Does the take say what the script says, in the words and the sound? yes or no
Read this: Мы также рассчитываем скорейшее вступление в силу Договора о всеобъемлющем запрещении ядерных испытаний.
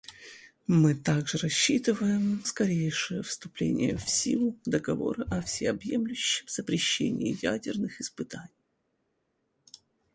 yes